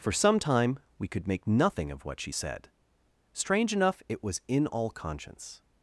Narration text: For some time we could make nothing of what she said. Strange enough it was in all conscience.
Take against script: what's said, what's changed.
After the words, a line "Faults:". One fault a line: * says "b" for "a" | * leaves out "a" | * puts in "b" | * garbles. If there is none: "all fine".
For some time we could make nothing of what she said. Strange enough it was in all conscience.
Faults:
all fine